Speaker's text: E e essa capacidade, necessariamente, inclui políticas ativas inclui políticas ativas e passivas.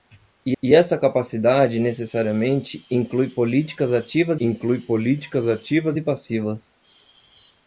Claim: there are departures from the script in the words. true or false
false